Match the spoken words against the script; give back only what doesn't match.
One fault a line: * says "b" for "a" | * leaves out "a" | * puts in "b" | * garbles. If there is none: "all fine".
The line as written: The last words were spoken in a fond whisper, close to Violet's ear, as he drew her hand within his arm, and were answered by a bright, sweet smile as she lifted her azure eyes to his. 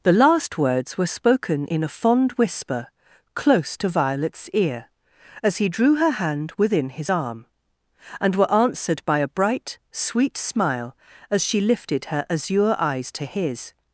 all fine